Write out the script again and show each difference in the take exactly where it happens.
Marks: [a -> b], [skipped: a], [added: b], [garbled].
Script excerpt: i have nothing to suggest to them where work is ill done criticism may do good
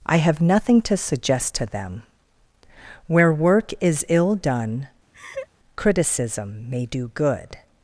i have nothing to suggest to them where work is ill done criticism may do good